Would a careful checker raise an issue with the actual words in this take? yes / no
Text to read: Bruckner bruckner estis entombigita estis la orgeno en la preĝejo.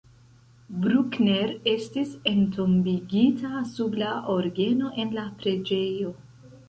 yes